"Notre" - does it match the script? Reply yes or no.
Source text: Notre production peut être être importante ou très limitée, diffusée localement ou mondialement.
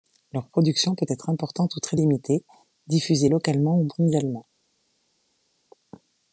no